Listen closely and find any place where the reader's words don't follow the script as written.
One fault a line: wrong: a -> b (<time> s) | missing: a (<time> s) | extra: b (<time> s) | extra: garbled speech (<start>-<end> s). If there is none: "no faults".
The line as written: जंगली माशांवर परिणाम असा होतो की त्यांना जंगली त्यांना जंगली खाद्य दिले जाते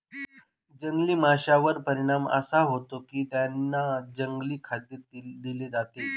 missing: त्यांना जंगली (4.6 s)